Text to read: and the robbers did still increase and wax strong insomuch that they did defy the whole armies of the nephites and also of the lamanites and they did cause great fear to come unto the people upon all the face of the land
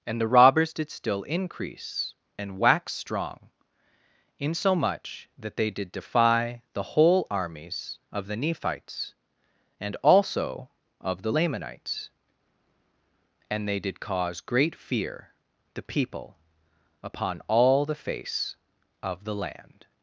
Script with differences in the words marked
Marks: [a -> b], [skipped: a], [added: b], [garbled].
and the robbers did still increase and wax strong insomuch that they did defy the whole armies of the nephites and also of the lamanites and they did cause great fear [skipped: to come unto] the people upon all the face of the land